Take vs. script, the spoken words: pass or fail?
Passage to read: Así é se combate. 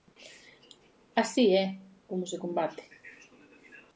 fail